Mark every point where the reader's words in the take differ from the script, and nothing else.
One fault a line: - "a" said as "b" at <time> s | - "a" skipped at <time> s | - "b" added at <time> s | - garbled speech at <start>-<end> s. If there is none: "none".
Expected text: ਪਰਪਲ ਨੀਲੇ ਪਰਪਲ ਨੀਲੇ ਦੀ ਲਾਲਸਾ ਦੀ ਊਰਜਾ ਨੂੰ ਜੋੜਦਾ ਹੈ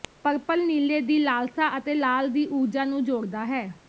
- "ਪਰਪਲ ਨੀਲੇ ਦੀ ਲਾਲਸਾ" said as "ਦੀ ਲਾਲਸਾ ਅਤੇ ਲਾਲ" at 1.0 s